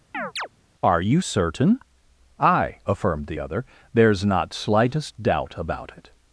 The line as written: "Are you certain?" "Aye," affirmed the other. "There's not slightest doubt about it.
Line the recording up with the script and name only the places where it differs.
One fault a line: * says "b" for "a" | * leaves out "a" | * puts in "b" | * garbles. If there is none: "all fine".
all fine